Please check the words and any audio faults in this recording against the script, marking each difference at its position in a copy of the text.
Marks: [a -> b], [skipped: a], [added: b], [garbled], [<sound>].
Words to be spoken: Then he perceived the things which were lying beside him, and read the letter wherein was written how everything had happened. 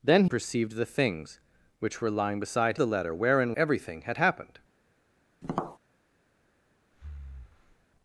Then [skipped: he] perceived the things which were lying beside [skipped: him, and read] the letter wherein [skipped: was written how] everything had happened. [tap] [breath]